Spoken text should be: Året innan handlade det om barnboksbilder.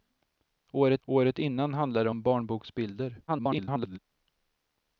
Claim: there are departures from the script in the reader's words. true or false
true